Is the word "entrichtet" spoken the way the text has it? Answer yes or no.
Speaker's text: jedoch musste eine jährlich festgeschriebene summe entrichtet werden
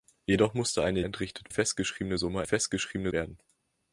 no